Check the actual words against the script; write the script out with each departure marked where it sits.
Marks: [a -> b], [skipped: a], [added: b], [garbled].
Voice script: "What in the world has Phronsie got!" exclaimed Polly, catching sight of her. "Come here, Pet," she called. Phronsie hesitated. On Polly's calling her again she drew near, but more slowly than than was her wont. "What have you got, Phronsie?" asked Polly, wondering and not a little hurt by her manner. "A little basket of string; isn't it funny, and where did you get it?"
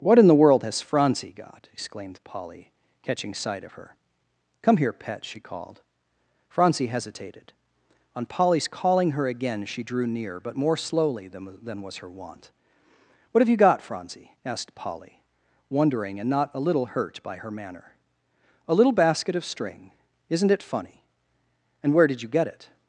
"What in the world has Phronsie got!" exclaimed Polly, catching sight of her. "Come here, Pet," she called. Phronsie hesitated. On Polly's calling her again she drew near, but more slowly than than was her wont. "What have you got, Phronsie?" asked Polly, wondering and not a little hurt by her manner. "A little basket of string; isn't it funny, and where did you get it?"